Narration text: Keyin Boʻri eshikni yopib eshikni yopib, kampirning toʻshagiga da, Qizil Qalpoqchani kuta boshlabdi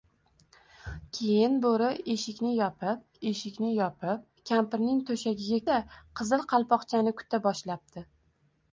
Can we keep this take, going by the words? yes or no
yes